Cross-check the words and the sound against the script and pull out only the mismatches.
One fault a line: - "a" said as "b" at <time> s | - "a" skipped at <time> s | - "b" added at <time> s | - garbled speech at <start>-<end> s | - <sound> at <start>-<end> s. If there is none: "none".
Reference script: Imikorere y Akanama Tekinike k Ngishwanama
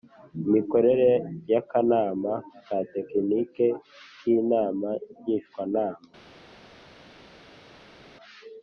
- "ka" added at 2.6 s
- "Inama" added at 4.4 s